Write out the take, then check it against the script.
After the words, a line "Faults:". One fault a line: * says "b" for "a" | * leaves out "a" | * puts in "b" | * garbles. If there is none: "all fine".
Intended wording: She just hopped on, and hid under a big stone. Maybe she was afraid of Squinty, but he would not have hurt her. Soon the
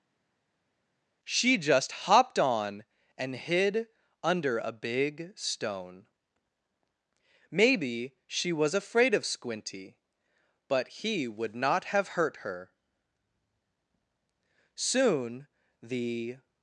She just hopped on, and hid under a big stone. Maybe she was afraid of Squinty, but he would not have hurt her. Soon the
Faults:
all fine